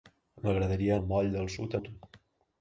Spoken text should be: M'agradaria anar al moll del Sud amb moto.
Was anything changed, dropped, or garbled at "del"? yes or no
no